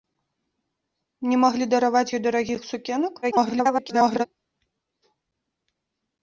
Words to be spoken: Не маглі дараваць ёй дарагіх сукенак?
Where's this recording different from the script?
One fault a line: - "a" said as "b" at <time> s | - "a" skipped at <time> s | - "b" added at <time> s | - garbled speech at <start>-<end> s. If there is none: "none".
- garbled speech at 3.2-4.3 s